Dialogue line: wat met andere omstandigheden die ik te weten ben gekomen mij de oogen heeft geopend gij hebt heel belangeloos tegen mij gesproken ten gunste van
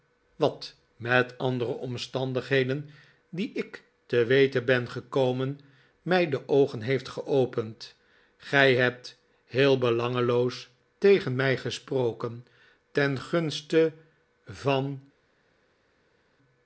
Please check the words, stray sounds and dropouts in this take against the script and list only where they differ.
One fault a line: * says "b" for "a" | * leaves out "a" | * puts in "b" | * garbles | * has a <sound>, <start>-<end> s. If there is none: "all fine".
all fine